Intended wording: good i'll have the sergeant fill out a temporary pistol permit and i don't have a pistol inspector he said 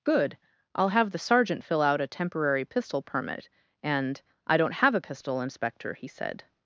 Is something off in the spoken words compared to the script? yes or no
no